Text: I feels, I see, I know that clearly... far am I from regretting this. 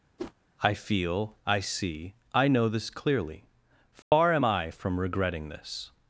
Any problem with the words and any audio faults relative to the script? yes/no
yes